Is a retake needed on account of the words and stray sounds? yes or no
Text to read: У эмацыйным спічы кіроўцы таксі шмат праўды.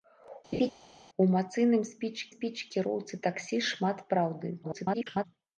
yes